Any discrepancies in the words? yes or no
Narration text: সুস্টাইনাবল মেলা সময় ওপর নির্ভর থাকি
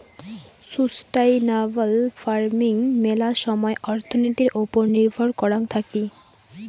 yes